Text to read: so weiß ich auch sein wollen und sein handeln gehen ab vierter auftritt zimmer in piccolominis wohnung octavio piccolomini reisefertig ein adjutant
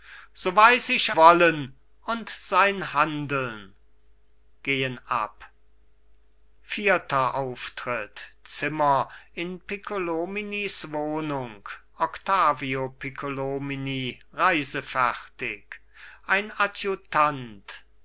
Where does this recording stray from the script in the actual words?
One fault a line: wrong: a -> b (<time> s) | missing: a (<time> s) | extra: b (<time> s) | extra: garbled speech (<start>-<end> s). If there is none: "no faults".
missing: auch sein (1.1 s)